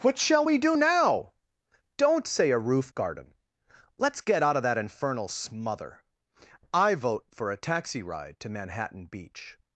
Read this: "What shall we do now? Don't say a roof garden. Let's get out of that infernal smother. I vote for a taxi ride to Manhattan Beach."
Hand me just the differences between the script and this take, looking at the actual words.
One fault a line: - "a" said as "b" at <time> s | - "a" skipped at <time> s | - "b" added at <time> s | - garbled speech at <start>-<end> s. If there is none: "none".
none